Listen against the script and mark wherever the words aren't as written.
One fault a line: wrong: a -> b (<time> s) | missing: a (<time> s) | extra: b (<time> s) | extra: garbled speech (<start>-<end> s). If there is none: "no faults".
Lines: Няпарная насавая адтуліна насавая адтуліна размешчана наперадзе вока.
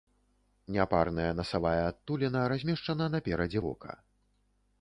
missing: насавая адтуліна (2.4 s)